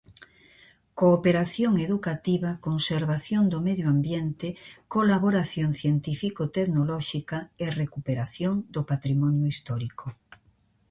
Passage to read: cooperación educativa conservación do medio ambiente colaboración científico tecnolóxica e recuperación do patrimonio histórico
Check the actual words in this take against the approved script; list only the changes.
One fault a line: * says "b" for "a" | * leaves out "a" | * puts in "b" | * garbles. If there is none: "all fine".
all fine